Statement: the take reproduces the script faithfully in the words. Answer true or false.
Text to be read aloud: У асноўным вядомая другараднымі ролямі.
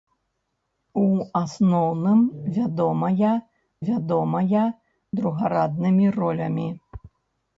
false